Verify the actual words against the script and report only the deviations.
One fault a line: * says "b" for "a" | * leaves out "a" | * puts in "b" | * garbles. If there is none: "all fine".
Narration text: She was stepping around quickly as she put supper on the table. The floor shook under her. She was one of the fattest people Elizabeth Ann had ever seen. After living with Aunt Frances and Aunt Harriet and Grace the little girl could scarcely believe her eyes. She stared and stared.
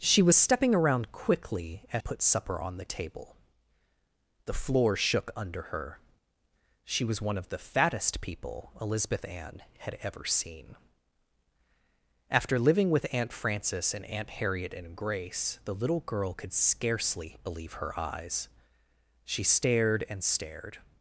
* leaves out "she"